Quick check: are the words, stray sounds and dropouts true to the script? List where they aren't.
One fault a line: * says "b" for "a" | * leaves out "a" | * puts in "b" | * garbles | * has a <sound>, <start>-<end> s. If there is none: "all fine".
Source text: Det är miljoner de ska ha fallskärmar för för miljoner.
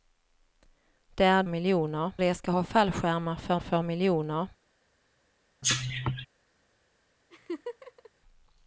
* has a cough, 5.6-6.3 s
* has a laugh, 7.3-8.1 s